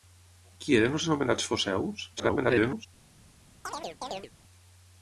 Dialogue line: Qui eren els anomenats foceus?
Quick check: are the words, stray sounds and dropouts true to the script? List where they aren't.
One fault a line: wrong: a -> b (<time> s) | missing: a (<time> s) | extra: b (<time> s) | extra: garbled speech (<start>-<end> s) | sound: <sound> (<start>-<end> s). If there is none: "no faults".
extra: garbled speech (2.2-2.9 s)
sound: chirp (3.6-4.3 s)